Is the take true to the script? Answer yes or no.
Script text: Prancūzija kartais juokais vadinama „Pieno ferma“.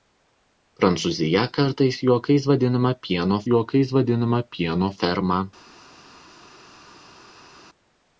no